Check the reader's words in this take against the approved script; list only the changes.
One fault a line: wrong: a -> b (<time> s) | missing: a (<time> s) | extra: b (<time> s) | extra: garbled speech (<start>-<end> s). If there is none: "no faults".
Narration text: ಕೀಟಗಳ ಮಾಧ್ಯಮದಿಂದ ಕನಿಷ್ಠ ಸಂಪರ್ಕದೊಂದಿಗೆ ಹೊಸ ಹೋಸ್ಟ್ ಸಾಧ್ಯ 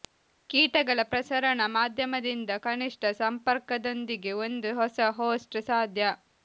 extra: ಪ್ರಸರಣ (1.0 s)
extra: ಒಂದು (4.5 s)